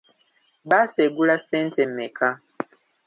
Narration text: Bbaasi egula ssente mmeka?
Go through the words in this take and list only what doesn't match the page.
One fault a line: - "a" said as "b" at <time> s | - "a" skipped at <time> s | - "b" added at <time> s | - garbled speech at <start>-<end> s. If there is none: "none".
none